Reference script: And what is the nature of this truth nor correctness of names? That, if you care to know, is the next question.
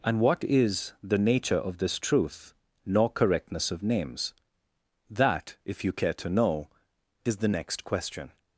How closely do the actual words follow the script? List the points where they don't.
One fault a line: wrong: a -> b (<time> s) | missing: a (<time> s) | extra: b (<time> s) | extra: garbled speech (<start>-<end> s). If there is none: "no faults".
no faults